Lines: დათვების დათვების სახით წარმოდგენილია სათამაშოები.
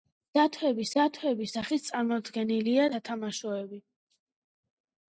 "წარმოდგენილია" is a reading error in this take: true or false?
false